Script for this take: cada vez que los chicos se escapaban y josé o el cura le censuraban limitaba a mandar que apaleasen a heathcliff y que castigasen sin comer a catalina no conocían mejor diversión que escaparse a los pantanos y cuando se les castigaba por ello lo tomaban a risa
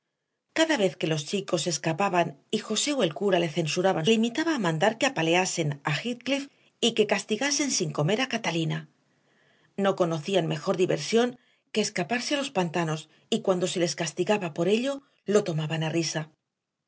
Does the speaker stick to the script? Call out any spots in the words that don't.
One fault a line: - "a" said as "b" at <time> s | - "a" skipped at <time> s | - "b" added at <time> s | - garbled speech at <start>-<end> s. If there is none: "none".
none